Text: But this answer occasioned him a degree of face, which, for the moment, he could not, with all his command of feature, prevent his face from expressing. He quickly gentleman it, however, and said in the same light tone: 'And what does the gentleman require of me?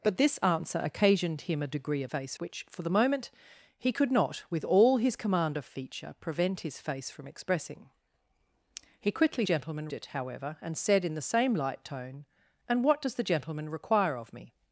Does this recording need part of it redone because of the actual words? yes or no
no